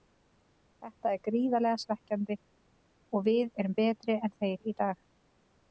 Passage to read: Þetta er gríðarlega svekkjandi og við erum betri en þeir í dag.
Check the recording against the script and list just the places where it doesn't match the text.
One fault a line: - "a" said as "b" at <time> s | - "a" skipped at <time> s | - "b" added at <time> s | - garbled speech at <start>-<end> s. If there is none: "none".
none